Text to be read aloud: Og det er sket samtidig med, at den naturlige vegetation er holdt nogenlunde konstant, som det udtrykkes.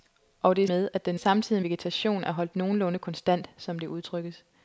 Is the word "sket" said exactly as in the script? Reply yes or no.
no